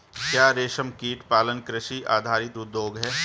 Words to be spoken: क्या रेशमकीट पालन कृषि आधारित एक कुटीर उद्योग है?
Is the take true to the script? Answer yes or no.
no